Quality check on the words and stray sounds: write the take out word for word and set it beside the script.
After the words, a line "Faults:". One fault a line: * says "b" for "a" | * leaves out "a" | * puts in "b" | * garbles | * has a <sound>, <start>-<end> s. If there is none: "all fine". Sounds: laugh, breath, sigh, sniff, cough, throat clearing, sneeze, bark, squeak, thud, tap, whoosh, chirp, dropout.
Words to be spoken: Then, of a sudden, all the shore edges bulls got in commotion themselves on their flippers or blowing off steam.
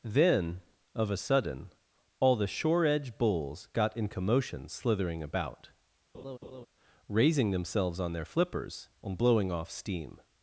Then, of a sudden, all the shore edge bulls got in commotion slithering about, raising themselves on their flippers and blowing off steam.
Faults:
* says "edge" for "edges"
* puts in "slithering about raising"
* has a laugh, 6.1-6.7 s
* says "and" for "or"